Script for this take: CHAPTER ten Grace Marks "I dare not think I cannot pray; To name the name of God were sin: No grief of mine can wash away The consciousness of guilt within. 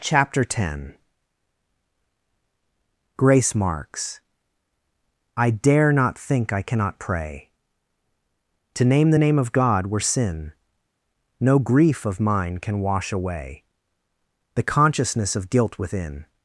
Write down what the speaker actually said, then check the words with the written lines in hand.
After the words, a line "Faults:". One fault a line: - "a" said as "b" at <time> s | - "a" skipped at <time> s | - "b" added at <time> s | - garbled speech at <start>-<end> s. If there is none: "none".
CHAPTER ten Grace Marks "I dare not think I cannot pray; To name the name of God were sin: No grief of mine can wash away The consciousness of guilt within.
Faults:
none